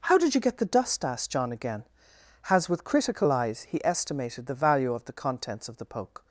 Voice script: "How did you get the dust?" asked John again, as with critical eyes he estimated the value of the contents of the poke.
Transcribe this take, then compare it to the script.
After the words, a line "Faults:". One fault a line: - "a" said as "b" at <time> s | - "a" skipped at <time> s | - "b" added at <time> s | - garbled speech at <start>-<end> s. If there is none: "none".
"How did you get the dust?" asked John again, has with critical eyes he estimated the value of the contents of the poke.
Faults:
- "as" said as "has" at 2.4 s